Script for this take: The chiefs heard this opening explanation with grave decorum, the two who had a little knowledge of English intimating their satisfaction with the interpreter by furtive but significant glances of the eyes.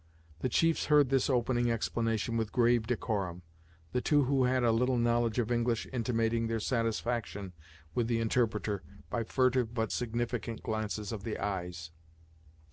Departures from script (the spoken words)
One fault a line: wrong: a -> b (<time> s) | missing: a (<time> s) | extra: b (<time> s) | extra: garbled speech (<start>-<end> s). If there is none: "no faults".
no faults